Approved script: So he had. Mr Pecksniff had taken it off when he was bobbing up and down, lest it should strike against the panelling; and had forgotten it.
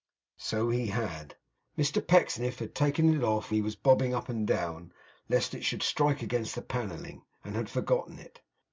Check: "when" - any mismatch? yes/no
yes